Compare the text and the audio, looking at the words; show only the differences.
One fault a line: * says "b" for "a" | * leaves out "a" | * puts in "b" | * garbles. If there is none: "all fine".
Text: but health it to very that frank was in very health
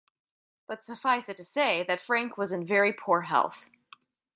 * says "suffice" for "health"
* says "say" for "very"
* puts in "poor"